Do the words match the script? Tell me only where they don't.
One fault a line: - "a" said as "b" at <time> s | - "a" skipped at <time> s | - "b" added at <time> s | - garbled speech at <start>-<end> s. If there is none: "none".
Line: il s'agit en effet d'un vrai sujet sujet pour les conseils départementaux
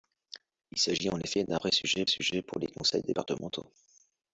none